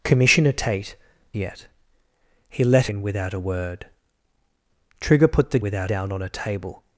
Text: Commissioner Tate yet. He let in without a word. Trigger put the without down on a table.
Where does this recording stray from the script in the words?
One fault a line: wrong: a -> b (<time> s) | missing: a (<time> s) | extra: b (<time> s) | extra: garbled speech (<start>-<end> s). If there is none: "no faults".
no faults